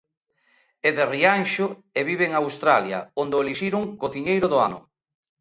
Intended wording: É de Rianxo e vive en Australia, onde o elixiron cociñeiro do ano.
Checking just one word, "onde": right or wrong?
right